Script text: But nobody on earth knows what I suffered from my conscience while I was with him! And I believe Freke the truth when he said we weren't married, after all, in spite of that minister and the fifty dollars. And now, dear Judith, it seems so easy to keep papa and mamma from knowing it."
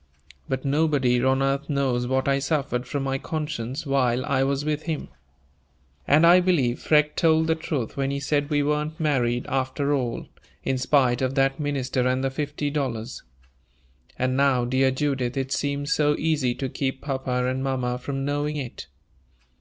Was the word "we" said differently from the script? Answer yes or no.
no